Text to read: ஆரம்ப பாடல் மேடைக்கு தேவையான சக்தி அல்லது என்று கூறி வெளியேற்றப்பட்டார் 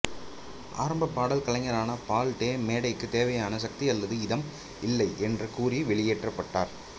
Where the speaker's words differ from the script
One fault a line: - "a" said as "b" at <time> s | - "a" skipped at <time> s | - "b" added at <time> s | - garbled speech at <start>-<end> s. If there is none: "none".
- "கலைஞரான பால் டே" added at 1.4 s
- "இதம் இல்லை" added at 4.2 s